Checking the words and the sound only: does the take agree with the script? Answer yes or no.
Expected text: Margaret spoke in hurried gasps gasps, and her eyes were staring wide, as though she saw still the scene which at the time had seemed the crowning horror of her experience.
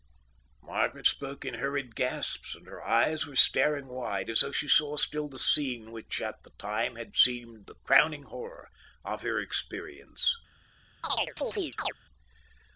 no